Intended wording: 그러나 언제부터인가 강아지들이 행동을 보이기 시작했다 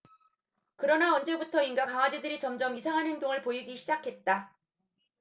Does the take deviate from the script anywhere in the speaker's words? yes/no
yes